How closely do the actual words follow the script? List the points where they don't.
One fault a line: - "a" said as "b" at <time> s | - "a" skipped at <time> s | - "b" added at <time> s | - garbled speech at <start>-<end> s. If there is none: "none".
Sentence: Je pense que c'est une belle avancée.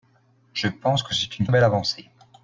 none